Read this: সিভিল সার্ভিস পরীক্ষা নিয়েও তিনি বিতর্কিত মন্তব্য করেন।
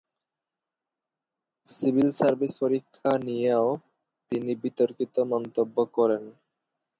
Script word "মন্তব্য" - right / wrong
right